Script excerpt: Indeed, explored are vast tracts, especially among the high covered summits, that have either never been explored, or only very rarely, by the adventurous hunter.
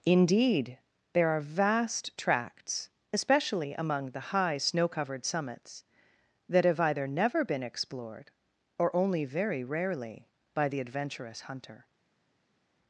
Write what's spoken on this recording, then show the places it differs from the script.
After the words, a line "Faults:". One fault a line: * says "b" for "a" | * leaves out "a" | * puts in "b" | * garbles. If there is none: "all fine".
Indeed, there are vast tracts, especially among the high snow covered summits, that have either never been explored, or only very rarely, by the adventurous hunter.
Faults:
* says "there" for "explored"
* puts in "snow"